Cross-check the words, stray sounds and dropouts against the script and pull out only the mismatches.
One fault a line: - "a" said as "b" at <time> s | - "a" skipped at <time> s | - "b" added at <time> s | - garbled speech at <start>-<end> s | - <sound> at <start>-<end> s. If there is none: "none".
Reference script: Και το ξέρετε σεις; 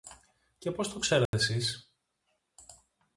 - "πώς" added at 0.7 s
- dropout at 1.3-1.3 s